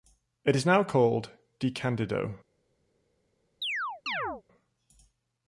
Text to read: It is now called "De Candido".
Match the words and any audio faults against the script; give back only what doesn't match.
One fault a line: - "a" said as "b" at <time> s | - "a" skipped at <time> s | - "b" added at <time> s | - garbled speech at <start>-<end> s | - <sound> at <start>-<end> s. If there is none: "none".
- chirp at 3.6-4.4 s